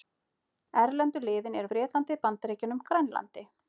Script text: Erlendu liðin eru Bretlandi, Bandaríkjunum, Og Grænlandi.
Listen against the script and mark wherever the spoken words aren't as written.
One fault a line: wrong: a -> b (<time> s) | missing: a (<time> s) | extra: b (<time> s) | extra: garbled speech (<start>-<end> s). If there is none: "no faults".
no faults